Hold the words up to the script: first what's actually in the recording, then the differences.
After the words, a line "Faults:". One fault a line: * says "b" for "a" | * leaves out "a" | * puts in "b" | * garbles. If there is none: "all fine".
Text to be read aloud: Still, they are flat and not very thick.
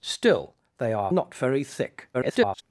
Still, they are not very thick. [garbled]
Faults:
* leaves out "flat and"
* garbles